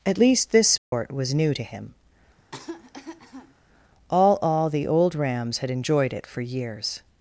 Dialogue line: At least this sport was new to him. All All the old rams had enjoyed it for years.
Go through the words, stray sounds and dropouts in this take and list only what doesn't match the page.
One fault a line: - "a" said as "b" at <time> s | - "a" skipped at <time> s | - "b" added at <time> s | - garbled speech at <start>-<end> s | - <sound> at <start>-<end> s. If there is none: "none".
- dropout at 0.8-0.9 s
- cough at 2.4-3.5 s